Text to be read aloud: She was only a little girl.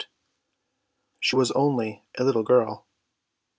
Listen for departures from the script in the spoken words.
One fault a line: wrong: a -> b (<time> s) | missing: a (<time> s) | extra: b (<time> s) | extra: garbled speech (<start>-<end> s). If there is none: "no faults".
no faults